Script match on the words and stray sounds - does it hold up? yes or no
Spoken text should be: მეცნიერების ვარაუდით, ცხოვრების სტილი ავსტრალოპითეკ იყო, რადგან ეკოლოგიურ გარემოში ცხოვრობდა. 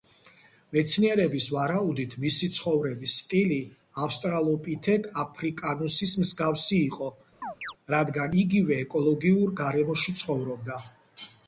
no